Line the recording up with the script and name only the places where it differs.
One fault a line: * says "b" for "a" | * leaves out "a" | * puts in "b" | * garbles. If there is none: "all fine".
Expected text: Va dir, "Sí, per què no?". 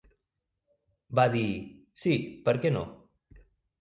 all fine